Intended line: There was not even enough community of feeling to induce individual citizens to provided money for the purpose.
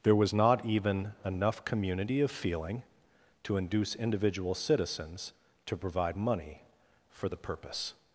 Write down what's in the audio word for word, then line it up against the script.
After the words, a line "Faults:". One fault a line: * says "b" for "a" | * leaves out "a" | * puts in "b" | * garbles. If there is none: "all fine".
There was not even enough community of feeling to induce individual citizens to provide money for the purpose.
Faults:
* says "provide" for "provided"